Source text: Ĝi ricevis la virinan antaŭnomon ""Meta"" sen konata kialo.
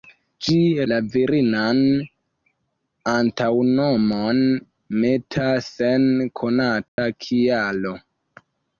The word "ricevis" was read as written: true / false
false